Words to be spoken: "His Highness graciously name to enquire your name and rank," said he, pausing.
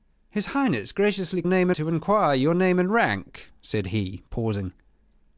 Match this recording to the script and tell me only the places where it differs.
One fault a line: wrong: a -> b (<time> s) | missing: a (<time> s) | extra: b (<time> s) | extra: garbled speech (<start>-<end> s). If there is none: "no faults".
no faults